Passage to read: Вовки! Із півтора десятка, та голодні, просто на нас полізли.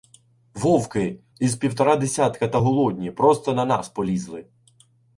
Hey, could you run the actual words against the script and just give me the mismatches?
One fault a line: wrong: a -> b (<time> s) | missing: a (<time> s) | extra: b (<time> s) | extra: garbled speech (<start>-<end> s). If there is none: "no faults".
no faults